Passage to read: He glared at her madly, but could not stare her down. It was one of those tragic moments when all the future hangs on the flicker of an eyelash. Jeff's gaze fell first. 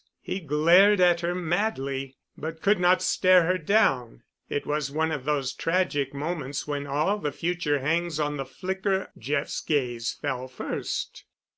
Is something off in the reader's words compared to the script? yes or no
yes